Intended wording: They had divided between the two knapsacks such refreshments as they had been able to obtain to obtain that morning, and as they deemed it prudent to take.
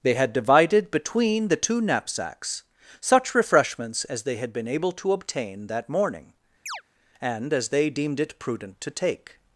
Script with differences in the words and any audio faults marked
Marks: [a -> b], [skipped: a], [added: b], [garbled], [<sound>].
They had divided between the two knapsacks such refreshments as they had been able to obtain [skipped: to obtain] that morning, [chirp] and as they deemed it prudent to take.